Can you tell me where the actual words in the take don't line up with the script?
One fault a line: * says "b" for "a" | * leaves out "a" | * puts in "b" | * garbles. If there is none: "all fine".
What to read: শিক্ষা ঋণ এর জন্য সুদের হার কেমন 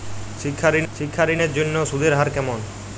* puts in "শিক্ষা ঋণ"